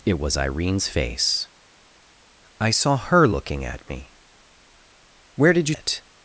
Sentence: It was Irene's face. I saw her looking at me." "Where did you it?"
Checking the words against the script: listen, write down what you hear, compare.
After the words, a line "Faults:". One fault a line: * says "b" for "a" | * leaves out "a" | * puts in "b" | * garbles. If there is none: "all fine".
It was Irene's face. I saw her looking at me." "Where did you it?"
Faults:
all fine